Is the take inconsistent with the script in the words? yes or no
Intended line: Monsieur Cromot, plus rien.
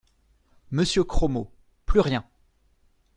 no